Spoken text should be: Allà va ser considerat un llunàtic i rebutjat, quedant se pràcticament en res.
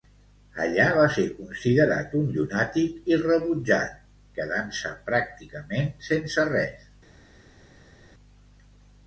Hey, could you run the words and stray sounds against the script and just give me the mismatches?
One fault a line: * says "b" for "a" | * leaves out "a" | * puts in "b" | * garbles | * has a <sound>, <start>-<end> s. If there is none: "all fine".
* says "sense" for "en"